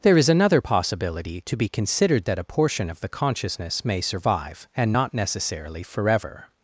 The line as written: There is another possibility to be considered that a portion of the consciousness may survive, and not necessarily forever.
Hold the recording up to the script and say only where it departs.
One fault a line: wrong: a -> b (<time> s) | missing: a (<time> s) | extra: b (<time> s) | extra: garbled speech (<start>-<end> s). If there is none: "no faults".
no faults